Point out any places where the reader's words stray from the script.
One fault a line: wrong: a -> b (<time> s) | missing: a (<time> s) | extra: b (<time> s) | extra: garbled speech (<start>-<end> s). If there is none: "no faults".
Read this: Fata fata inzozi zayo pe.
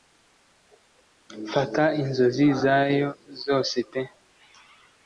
missing: fata (1.8 s)
extra: zose (3.4 s)